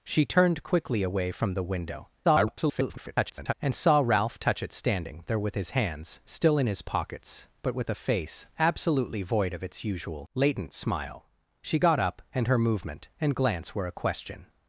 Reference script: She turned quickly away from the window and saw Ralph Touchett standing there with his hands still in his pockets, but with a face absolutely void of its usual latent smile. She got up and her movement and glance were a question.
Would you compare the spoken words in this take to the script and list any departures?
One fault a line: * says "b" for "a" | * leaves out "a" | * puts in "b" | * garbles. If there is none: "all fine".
* garbles